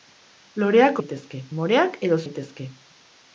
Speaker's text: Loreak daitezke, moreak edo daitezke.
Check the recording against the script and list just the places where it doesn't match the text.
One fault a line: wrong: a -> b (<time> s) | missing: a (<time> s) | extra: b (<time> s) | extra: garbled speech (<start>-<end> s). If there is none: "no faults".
no faults